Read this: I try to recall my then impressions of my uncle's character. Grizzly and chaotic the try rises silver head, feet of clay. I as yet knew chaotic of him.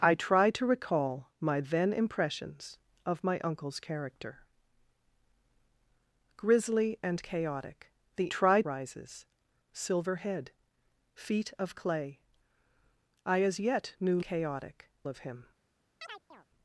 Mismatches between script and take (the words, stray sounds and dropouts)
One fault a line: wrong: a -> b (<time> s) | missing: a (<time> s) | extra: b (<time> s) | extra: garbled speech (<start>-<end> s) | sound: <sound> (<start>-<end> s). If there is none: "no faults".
sound: chirp (16.0-16.5 s)